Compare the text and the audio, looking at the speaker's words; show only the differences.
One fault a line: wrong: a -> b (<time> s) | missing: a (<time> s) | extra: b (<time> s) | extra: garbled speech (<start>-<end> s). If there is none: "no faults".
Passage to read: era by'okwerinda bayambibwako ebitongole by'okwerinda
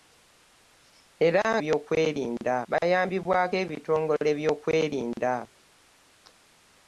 no faults